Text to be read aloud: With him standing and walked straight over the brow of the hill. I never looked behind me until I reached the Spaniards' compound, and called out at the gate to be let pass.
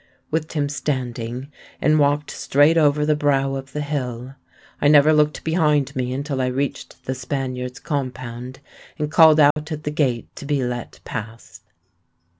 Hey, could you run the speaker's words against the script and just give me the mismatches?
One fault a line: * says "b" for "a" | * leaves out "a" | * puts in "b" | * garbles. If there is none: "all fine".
all fine